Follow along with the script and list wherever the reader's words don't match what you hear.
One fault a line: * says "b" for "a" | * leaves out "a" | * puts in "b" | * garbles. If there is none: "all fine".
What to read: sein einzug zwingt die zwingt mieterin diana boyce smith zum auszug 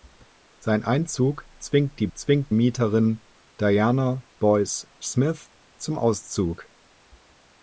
all fine